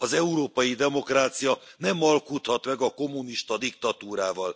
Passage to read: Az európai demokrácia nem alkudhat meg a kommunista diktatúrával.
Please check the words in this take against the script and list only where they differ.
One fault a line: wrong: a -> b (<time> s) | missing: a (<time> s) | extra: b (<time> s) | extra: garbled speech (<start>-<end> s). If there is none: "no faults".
no faults